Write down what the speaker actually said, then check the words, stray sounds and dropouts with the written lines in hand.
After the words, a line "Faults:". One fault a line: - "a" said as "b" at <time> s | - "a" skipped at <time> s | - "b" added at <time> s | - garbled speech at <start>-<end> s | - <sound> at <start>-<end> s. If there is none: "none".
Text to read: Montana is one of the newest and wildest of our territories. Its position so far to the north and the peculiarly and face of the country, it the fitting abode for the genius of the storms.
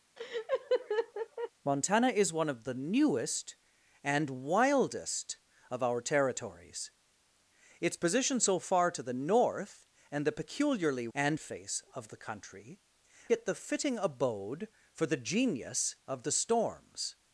Montana is one of the newest and wildest of our territories. Its position so far to the north and the peculiarly and face of the country, it the fitting abode for the genius of the storms.
Faults:
- laugh at 0.2-1.5 s